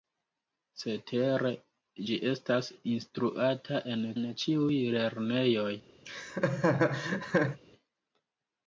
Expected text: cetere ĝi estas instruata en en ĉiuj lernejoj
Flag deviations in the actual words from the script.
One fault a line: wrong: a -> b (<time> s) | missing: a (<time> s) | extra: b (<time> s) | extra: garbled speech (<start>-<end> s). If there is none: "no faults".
no faults